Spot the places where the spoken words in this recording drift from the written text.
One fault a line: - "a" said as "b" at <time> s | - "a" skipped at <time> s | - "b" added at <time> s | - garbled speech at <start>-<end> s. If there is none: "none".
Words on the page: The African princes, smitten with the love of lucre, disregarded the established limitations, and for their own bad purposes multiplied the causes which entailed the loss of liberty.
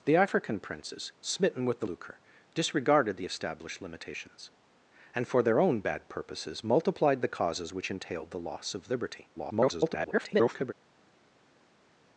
- "love of" skipped at 1.9 s
- garbled speech at 9.3-10.7 s